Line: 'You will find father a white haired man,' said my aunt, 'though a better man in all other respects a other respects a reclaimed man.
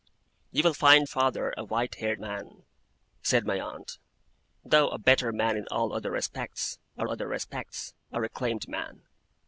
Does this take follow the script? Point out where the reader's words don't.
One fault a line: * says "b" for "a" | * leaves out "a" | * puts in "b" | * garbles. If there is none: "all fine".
all fine